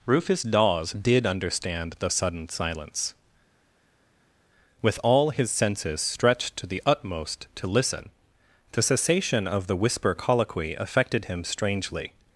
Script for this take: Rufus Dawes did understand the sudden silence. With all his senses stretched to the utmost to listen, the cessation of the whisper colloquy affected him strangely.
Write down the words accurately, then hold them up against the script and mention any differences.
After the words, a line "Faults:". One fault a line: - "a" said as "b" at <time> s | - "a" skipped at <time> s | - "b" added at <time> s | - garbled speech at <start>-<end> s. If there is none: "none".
Rufus Dawes did understand the sudden silence. With all his senses stretched to the utmost to listen, the cessation of the whisper colloquy affected him strangely.
Faults:
none